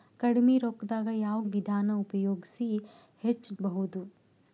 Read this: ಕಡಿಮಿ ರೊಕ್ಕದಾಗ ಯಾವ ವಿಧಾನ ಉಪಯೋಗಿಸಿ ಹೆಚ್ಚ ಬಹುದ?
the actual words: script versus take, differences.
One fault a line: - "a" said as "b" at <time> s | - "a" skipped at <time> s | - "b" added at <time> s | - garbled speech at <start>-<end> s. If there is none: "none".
none